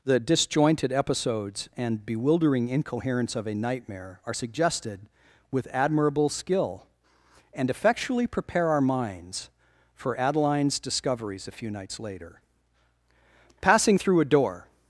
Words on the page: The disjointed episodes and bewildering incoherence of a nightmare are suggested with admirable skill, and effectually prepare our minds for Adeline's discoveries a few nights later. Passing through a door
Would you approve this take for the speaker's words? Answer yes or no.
yes